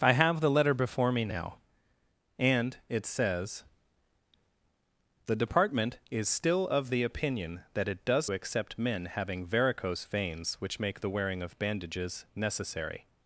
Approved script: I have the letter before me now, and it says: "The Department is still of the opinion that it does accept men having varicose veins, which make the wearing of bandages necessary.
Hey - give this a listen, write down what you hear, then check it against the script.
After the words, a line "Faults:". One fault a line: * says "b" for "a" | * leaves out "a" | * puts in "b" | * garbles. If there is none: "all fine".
I have the letter before me now, and it says: "The Department is still of the opinion that it does accept men having varicose veins, which make the wearing of bandages necessary.
Faults:
all fine